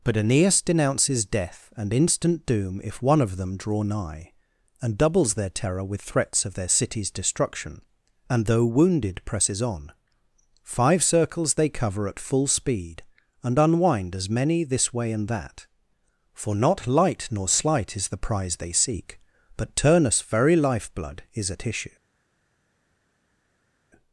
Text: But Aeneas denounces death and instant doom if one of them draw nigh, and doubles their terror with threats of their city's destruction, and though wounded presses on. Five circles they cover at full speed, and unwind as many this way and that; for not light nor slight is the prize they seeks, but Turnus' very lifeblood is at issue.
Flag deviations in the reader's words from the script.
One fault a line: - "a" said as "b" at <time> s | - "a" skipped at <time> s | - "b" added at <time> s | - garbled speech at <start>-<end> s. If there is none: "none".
- "seeks" said as "seek" at 18.7 s